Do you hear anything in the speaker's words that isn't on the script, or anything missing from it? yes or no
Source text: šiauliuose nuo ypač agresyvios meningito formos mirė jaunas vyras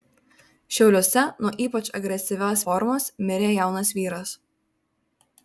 yes